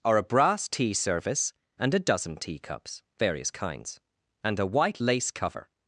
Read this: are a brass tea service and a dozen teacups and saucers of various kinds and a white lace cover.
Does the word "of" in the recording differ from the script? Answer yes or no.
yes